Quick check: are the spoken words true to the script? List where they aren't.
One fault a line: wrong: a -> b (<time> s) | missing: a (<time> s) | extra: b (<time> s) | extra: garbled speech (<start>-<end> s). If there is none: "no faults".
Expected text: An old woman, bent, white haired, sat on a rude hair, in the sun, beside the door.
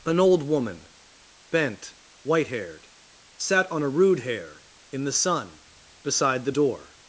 no faults